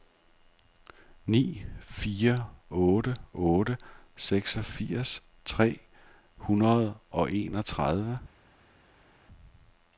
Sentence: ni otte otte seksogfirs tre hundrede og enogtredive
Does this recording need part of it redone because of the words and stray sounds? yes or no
yes